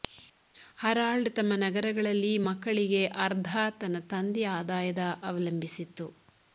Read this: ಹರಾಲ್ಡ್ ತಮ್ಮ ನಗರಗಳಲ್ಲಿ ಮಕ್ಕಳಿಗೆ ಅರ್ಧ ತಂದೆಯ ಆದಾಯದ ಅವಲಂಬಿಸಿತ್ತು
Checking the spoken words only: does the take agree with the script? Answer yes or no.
no